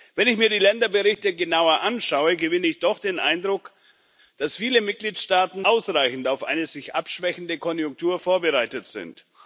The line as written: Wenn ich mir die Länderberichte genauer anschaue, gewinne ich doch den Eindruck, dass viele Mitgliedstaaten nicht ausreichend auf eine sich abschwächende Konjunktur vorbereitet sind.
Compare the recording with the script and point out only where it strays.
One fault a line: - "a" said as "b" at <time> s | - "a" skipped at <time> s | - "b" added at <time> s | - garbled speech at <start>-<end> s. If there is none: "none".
- "nicht" skipped at 5.6 s